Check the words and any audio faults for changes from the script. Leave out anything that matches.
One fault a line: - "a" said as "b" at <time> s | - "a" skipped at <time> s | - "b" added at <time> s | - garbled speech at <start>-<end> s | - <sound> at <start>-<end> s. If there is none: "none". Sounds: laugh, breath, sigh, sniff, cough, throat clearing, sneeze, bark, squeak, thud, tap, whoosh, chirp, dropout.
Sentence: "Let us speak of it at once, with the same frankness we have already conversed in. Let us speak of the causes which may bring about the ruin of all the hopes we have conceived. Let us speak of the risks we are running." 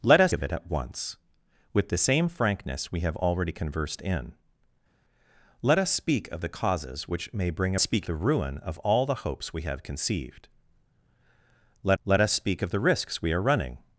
- "speak" skipped at 0.3 s
- "about" said as "speak" at 7.8 s
- "let" added at 12.0 s